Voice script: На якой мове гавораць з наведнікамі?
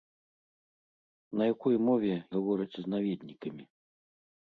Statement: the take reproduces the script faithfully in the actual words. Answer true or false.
true